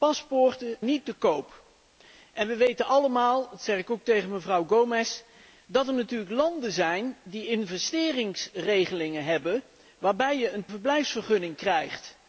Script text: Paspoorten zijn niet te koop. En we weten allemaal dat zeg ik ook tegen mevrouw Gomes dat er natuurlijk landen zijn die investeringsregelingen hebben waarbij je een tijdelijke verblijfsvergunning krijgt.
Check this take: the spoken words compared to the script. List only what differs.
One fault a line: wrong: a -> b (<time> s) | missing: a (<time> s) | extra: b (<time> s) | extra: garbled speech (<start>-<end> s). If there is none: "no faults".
missing: zijn (0.8 s)
missing: tijdelijke (10.7 s)